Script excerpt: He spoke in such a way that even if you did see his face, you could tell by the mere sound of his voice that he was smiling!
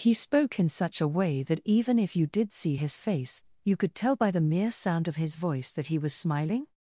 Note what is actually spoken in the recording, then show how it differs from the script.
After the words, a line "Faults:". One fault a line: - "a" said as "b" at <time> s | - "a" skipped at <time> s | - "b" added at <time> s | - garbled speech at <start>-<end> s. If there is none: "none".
He spoke in such a way that even if you did see his face, you could tell by the mere sound of his voice that he was smiling!
Faults:
none